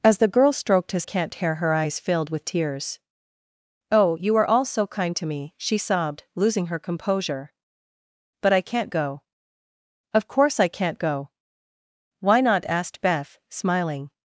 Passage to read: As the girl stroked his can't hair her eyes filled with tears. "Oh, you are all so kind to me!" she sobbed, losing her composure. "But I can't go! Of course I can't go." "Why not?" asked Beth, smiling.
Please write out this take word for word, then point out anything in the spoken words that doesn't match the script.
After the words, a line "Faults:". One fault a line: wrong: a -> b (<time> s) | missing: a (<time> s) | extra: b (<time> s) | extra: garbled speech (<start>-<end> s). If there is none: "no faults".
As the girl stroked his can't hair her eyes filled with tears. "Oh, you are all so kind to me!" she sobbed, losing her composure. "But I can't go! Of course I can't go." "Why not?" asked Beth, smiling.
Faults:
no faults